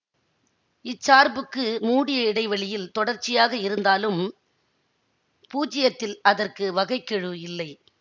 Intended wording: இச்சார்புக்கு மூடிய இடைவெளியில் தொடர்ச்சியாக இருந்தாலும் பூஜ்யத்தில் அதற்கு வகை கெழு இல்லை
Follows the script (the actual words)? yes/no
yes